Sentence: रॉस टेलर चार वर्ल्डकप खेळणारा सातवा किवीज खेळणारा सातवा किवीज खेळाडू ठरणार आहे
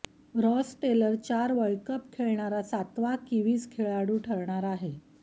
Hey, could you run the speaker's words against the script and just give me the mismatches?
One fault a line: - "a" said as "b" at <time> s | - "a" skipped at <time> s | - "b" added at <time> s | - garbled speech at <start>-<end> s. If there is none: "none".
- "खेळणारा सातवा किवीज" skipped at 3.7 s